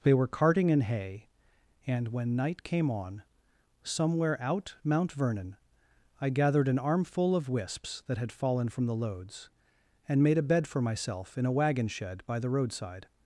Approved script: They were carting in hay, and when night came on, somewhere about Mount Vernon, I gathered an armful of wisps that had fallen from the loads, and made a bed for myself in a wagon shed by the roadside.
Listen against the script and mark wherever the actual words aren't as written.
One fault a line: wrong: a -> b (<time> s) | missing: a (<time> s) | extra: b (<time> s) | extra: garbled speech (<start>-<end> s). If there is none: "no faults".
wrong: about -> out (4.4 s)